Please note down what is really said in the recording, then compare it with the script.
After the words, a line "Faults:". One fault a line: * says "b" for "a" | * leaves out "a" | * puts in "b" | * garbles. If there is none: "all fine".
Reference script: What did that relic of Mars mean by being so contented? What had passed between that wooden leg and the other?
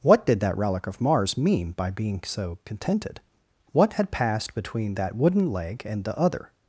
What did that relic of Mars mean by being so contented? What had passed between that wooden leg and the other?
Faults:
all fine